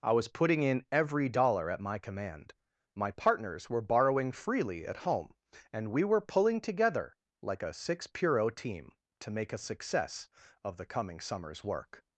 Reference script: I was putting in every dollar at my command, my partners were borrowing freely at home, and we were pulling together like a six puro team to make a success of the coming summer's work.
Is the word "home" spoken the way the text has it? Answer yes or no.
yes